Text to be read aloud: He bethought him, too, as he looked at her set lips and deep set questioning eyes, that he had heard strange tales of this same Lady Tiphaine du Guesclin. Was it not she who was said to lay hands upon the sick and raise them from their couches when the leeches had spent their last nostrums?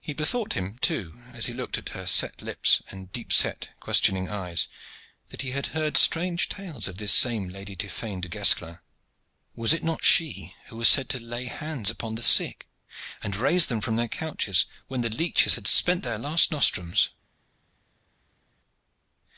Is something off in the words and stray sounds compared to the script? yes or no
no